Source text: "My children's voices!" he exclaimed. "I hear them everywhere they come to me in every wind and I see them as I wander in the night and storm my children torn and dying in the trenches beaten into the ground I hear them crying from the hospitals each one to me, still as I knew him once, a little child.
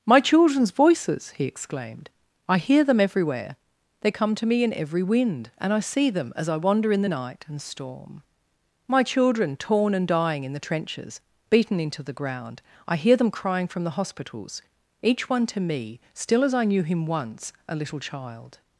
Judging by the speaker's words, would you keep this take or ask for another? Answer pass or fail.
pass